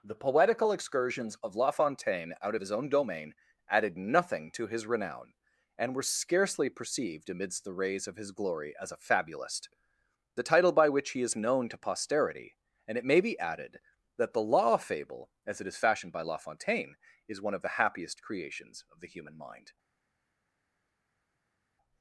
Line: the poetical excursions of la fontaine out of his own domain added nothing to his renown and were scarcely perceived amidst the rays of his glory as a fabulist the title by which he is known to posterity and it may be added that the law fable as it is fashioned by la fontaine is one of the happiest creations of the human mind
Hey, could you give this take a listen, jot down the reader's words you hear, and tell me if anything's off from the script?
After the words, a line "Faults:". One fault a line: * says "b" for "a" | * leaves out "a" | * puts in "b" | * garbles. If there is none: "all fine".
the poetical excursions of la fontaine out of his own domain added nothing to his renown and were scarcely perceived amidst the rays of his glory as a fabulist the title by which he is known to posterity and it may be added that the law fable as it is fashioned by la fontaine is one of the happiest creations of the human mind
Faults:
all fine